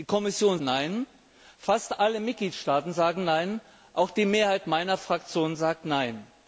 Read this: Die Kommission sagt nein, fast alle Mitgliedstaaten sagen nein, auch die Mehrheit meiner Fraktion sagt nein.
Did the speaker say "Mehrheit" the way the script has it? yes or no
yes